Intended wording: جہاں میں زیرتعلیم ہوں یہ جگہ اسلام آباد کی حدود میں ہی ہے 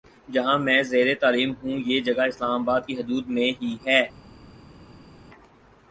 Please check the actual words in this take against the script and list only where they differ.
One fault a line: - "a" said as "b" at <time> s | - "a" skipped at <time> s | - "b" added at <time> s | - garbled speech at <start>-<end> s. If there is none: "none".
none